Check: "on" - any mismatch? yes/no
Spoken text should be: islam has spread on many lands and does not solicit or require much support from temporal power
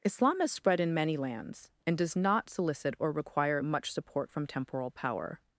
yes